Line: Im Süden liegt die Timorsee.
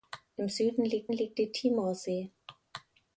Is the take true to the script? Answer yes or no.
no